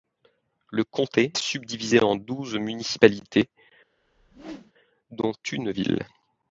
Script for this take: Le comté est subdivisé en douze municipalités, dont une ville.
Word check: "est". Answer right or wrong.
wrong